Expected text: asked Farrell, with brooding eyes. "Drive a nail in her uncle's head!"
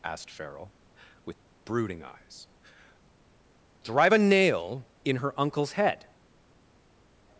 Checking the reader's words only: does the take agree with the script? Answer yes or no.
yes